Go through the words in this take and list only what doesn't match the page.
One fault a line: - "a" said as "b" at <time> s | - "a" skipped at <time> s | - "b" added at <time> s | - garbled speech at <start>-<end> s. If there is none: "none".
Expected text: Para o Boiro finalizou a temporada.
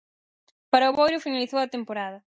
none